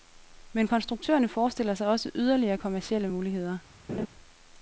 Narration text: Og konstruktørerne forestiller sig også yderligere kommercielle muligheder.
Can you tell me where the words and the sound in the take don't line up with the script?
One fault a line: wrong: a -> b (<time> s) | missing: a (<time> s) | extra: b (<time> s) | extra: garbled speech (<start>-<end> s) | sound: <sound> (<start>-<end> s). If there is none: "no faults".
wrong: Og -> Men (0.5 s)
sound: laugh (3.9-4.1 s)